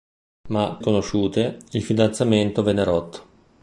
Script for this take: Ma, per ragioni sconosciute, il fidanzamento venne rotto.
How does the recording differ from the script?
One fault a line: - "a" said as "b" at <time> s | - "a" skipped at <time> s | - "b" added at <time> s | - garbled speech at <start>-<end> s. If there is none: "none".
- "per ragioni" skipped at 0.8 s